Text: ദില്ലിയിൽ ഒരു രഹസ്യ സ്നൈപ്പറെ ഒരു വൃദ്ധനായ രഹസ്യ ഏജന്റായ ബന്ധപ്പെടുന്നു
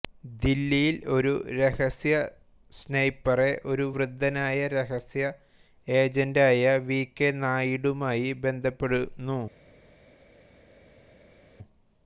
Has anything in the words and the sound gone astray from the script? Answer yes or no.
yes